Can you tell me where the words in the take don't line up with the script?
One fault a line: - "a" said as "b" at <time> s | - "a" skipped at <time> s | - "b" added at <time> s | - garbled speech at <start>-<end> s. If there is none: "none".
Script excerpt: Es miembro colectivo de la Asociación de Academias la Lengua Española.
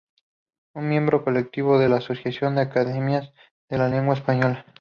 - "de" added at 3.7 s